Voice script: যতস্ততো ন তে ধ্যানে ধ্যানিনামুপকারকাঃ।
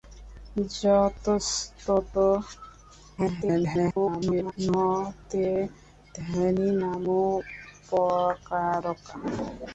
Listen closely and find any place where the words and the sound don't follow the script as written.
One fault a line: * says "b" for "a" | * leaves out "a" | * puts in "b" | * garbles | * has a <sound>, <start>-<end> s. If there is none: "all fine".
* garbles
* leaves out "ধ্যানে"